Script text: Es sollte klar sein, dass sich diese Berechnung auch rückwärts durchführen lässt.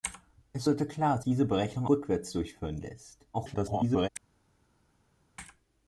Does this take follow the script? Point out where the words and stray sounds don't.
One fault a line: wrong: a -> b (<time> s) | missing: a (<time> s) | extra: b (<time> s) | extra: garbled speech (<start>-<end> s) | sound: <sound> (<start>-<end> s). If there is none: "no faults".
missing: sein dass sich (1.2 s)
missing: auch (1.9 s)
extra: garbled speech (3.3-4.1 s)